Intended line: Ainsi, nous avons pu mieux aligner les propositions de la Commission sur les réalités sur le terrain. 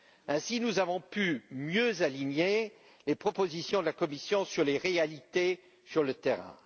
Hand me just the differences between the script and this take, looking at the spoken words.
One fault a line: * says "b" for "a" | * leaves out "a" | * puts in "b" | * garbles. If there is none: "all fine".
all fine